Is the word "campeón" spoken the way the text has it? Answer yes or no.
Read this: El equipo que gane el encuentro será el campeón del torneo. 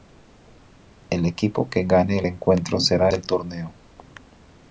no